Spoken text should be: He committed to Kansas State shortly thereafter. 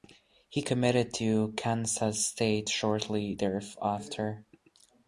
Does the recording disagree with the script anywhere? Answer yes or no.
no